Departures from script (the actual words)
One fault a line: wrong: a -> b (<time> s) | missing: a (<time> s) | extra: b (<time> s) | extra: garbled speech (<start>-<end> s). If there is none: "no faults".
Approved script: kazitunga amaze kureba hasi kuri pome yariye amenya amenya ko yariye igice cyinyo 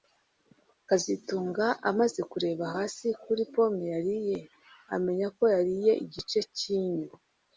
missing: amenya (5.3 s)